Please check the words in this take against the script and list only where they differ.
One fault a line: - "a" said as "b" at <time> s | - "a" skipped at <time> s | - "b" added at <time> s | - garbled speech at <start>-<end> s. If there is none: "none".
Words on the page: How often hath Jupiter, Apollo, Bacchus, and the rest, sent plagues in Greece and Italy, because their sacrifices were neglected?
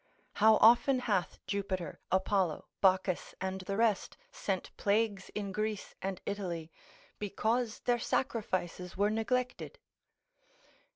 none